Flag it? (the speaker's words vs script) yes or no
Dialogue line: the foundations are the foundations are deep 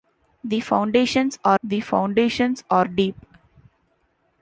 no